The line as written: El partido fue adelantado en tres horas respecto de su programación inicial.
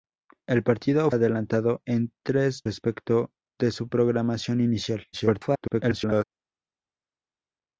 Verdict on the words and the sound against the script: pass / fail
fail